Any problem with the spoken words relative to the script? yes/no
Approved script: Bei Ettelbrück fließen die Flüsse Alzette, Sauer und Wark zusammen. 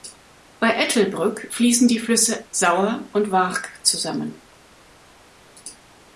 yes